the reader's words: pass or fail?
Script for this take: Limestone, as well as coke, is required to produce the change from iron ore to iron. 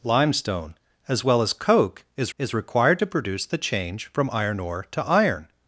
fail